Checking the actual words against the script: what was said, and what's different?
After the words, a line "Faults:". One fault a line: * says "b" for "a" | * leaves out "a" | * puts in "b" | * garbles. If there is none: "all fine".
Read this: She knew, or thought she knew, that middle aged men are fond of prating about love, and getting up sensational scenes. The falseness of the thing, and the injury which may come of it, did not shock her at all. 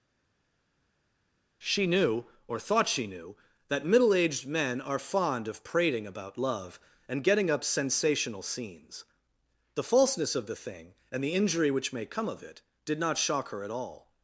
She knew, or thought she knew, that middle aged men are fond of prating about love, and getting up sensational scenes. The falseness of the thing, and the injury which may come of it, did not shock her at all.
Faults:
all fine